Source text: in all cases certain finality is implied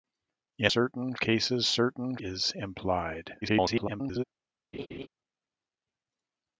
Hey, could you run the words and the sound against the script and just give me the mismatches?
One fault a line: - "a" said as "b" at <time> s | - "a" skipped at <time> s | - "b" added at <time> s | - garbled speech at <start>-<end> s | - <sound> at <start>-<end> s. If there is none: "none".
- "all" said as "certain" at 0.7 s
- "finality" skipped at 2.2 s
- garbled speech at 3.4-4.2 s
- laugh at 4.7-5.1 s